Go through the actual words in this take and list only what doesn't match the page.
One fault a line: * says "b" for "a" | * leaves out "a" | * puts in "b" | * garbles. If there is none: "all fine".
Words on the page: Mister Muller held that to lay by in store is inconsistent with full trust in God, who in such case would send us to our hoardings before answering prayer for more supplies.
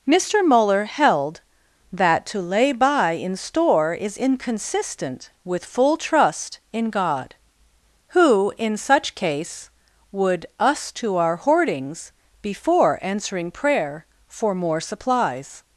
* leaves out "send"